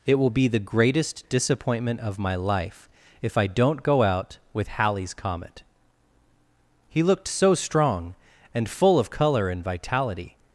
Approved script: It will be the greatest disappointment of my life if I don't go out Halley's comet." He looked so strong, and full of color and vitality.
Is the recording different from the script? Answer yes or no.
yes